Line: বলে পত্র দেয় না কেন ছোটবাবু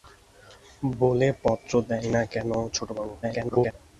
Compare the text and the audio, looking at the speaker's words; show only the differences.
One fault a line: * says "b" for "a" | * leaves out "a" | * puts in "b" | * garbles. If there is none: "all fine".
* garbles